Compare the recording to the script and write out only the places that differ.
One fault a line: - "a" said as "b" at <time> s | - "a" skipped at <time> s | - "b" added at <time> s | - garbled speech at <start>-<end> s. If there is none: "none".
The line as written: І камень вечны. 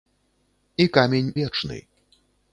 none